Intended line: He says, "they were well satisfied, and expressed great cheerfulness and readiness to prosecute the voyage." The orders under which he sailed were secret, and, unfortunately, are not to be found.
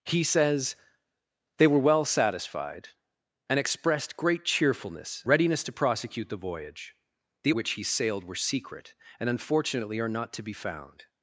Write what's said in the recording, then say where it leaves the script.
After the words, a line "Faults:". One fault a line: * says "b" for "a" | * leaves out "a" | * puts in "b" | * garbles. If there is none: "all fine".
He says, "they were well satisfied, and expressed great cheerfulness readiness to prosecute the voyage." The which he sailed were secret, and, unfortunately, are not to be found.
Faults:
* leaves out "and"
* leaves out "orders under"